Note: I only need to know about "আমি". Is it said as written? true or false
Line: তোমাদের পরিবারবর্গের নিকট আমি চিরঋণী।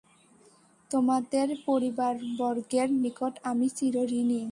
true